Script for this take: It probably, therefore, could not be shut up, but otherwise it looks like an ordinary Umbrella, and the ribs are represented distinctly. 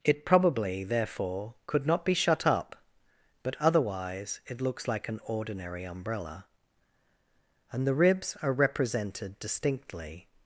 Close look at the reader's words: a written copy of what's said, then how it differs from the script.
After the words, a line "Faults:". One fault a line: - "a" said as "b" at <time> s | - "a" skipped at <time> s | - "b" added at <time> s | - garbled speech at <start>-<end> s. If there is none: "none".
It probably, therefore, could not be shut up, but otherwise it looks like an ordinary Umbrella, and the ribs are represented distinctly.
Faults:
none